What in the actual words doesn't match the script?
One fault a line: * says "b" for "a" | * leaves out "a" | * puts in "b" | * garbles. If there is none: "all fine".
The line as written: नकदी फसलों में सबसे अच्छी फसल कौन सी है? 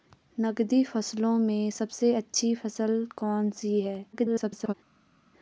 * garbles